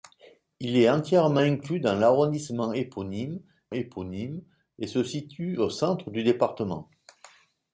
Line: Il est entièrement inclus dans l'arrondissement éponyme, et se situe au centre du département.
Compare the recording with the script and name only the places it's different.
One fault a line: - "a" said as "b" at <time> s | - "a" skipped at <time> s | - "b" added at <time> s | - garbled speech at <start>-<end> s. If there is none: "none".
- "éponyme" added at 3.7 s